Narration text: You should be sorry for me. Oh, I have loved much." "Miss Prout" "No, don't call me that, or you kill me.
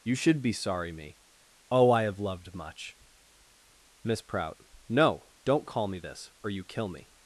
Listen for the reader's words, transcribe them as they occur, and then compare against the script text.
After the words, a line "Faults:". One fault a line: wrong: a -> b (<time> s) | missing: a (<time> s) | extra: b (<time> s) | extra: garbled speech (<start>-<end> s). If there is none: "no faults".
You should be sorry me. Oh, I have loved much." "Miss Prout" "No, don't call me this, or you kill me.
Faults:
missing: for (0.9 s)
wrong: that -> this (6.0 s)